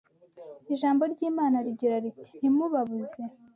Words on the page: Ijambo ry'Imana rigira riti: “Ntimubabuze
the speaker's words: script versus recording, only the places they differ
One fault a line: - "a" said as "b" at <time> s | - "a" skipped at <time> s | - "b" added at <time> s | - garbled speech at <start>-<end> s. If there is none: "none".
none